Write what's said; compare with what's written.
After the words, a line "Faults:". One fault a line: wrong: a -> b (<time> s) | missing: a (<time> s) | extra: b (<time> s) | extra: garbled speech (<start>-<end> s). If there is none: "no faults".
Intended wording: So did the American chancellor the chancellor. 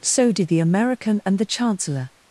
So did the American and the chancellor.
Faults:
wrong: chancellor -> and (1.3 s)